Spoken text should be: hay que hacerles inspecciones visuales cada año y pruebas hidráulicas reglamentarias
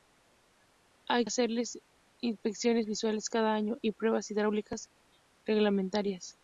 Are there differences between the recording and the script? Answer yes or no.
yes